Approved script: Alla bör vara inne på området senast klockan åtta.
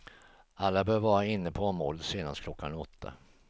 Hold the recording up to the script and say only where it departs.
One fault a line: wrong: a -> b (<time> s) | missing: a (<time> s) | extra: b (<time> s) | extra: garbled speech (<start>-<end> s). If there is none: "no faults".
no faults